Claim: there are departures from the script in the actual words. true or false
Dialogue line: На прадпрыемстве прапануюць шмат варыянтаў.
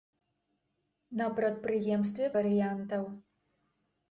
true